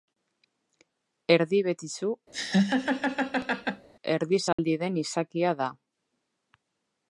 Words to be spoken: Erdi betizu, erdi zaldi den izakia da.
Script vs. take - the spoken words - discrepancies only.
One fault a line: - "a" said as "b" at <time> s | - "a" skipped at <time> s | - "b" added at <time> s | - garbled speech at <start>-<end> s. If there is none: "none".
none